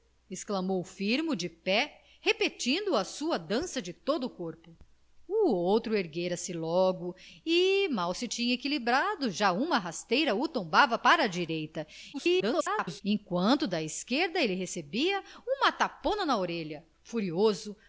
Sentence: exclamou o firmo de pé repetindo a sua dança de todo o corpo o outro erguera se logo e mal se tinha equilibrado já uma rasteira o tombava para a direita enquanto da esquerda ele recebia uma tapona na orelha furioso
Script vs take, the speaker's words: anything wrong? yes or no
yes